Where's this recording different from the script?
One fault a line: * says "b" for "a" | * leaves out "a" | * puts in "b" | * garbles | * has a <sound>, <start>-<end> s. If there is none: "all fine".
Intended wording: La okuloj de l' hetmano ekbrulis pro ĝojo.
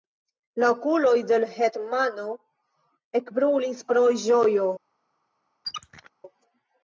* has a squeak, 5.6-6.1 s